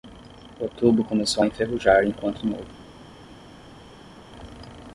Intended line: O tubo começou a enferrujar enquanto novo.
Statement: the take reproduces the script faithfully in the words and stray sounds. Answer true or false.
true